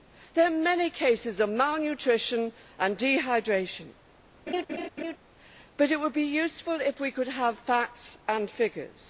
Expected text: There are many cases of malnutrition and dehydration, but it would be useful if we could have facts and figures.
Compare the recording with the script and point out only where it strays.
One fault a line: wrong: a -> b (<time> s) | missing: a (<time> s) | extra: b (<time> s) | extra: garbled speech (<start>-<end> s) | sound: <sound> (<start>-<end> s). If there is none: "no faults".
sound: laugh (4.5-5.2 s)